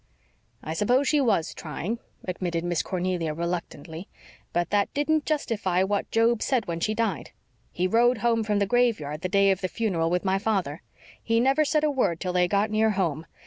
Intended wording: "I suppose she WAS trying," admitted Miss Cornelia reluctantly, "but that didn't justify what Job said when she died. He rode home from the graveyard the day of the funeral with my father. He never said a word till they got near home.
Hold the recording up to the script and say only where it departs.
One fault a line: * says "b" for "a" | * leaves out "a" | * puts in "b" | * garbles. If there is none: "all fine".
all fine